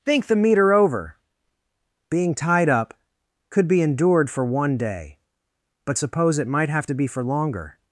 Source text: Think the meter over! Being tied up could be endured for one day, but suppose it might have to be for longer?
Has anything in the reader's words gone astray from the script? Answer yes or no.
no